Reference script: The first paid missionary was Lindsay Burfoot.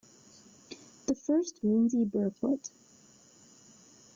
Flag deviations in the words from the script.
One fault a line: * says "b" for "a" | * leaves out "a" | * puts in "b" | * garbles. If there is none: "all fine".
* leaves out "paid missionary was"